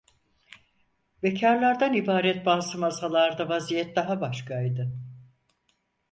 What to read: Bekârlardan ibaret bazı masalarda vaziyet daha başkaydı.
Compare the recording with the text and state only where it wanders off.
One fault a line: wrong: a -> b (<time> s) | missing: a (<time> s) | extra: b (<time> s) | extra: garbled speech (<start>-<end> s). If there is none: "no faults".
no faults